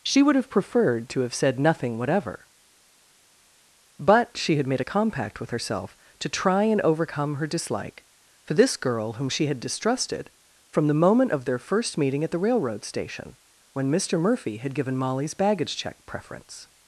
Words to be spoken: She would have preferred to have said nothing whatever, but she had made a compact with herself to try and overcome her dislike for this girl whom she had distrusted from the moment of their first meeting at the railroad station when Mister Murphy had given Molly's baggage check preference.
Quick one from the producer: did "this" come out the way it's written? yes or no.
yes